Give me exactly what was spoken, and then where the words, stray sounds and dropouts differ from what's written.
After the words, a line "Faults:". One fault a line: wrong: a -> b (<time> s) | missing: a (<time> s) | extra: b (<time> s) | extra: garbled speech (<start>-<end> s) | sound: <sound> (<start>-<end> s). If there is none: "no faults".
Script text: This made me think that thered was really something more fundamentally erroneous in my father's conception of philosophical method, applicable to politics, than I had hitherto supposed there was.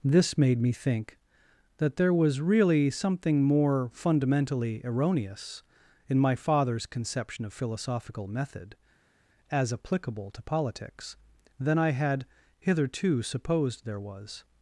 This made me think that there was really something more fundamentally erroneous in my father's conception of philosophical method, as applicable to politics, than I had hitherto supposed there was.
Faults:
wrong: thered -> there (2.0 s)
extra: as (9.5 s)